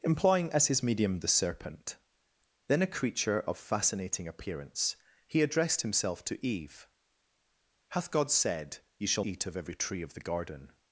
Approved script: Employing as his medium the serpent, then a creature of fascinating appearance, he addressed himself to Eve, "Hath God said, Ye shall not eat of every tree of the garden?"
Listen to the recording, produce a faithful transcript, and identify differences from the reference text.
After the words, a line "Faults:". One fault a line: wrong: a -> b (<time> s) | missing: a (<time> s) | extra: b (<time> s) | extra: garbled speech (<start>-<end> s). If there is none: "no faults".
Employing as his medium the serpent, then a creature of fascinating appearance, he addressed himself to Eve, "Hath God said, Ye shall eat of every tree of the garden?"
Faults:
missing: not (9.2 s)